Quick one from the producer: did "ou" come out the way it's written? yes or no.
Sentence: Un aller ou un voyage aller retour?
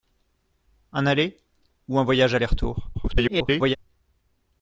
yes